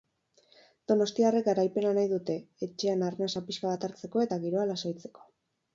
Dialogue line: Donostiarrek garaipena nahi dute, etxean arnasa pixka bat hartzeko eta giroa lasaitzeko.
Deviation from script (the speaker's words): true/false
false